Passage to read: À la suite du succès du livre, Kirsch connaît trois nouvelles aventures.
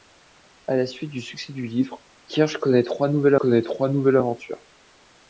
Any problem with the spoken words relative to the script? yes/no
yes